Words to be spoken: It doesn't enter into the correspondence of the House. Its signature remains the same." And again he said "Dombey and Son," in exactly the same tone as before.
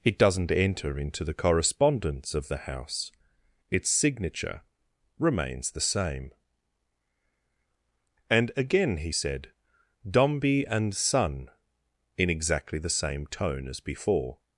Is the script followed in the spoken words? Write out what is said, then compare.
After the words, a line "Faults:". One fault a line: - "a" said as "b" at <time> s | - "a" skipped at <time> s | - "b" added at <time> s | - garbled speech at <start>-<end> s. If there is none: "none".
It doesn't enter into the correspondence of the House. Its signature remains the same." And again he said "Dombey and Son," in exactly the same tone as before.
Faults:
none